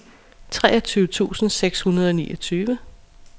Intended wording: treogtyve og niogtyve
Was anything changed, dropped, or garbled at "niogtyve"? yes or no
no